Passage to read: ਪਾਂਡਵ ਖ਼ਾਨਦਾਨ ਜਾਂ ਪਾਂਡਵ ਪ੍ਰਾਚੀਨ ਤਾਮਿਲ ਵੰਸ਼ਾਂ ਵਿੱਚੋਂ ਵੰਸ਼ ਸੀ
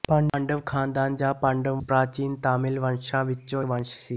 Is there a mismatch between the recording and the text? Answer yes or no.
no